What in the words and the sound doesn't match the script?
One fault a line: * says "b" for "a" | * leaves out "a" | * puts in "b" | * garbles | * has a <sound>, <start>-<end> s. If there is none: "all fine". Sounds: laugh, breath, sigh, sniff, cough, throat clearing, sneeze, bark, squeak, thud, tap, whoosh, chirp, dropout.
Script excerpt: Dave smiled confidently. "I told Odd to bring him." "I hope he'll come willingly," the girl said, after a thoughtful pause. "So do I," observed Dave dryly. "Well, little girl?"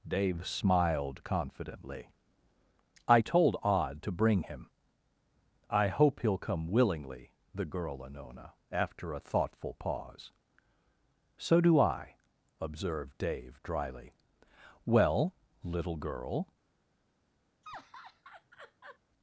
* says "anona" for "said"
* has a laugh, 17.6-19.0 s